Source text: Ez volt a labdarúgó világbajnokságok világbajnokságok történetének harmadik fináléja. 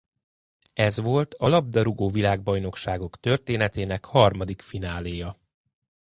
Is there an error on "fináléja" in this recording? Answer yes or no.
no